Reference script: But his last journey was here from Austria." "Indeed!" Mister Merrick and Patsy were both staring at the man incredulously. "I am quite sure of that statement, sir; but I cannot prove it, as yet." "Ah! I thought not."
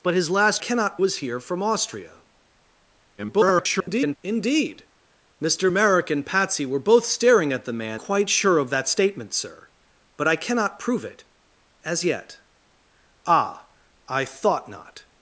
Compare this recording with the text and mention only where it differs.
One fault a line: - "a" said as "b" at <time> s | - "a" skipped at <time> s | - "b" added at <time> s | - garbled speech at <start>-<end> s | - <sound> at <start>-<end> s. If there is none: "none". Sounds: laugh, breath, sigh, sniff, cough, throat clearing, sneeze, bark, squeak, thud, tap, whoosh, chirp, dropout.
- "journey" said as "cannot" at 0.6 s
- garbled speech at 3.2-4.2 s
- "incredulously I am" skipped at 8.0 s